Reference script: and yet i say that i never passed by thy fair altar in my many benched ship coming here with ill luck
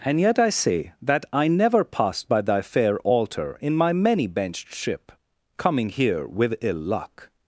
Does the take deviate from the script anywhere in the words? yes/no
no